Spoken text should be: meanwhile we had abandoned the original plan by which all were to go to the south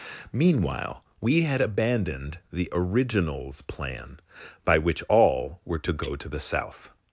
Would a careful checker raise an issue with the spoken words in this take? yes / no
yes